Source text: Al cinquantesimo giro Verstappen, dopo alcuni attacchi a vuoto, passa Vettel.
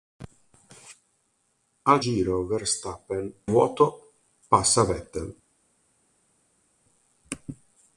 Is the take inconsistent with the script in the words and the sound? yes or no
yes